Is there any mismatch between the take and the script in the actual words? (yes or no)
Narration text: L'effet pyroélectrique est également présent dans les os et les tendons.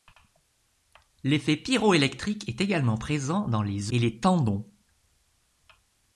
yes